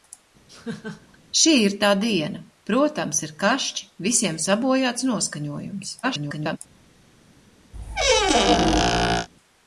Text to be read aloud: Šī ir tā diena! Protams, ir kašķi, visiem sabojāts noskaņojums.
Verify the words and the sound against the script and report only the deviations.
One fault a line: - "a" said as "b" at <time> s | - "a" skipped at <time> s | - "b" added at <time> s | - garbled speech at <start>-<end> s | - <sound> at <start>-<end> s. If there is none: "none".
- laugh at 0.5-1.2 s
- garbled speech at 6.0-6.6 s
- squeak at 7.7-9.3 s